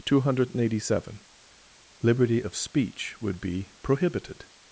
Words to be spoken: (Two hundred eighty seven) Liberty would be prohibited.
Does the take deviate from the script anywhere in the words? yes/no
yes